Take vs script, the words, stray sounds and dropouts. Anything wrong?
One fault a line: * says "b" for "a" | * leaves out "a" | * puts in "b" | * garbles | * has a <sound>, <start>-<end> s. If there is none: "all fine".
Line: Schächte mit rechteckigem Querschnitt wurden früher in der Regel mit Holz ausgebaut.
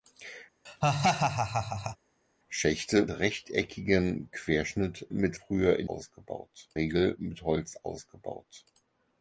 * has a laugh, 0.7-2.0 s
* leaves out "mit"
* says "mit" for "wurden"
* says "ausgebaut" for "der"